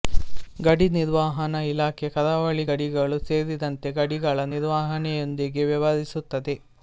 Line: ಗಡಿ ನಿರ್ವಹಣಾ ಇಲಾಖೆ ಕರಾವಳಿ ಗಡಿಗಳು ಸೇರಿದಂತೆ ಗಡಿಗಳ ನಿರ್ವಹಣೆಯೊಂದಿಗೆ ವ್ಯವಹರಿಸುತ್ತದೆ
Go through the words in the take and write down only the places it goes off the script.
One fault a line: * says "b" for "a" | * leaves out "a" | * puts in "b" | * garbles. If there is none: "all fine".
all fine